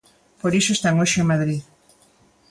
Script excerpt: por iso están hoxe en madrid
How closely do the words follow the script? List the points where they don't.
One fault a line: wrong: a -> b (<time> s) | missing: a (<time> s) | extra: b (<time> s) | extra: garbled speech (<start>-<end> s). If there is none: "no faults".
no faults